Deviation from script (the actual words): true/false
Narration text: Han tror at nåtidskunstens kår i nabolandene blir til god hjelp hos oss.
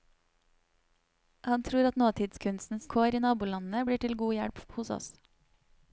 false